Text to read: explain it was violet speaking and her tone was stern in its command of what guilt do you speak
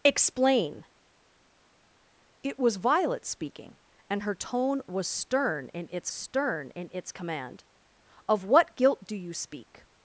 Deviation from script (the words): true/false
true